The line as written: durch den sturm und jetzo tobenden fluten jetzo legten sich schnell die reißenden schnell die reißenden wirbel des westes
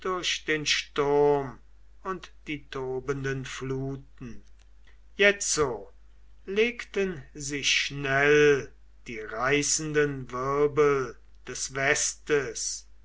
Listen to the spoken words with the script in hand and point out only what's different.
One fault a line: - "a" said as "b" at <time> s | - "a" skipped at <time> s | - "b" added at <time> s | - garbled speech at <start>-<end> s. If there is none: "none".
- "jetzo" said as "die" at 2.5 s
- "schnell die reißenden" skipped at 10.3 s